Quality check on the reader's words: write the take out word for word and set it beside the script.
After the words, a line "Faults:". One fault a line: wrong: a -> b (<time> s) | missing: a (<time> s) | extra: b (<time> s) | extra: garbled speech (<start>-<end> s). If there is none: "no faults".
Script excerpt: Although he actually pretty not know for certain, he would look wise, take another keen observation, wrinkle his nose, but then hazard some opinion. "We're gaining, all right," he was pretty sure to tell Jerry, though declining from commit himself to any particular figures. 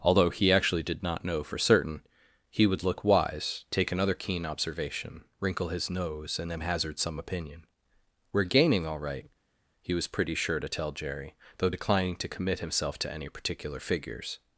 Although he actually did not know for certain, he would look wise, take another keen observation, wrinkle his nose, and then hazard some opinion. "We're gaining, all right," he was pretty sure to tell Jerry, though declining to commit himself to any particular figures.
Faults:
wrong: pretty -> did (0.8 s)
wrong: but -> and (6.4 s)
wrong: from -> to (12.2 s)